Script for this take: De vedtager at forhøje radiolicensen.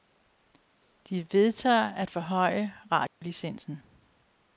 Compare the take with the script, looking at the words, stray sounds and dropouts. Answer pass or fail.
fail